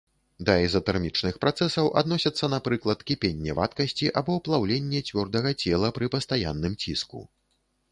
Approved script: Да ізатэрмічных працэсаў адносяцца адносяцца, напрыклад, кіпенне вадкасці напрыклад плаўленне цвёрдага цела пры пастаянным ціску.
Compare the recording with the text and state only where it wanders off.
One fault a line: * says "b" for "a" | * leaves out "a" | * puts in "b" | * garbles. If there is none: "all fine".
* leaves out "адносяцца"
* says "або" for "напрыклад"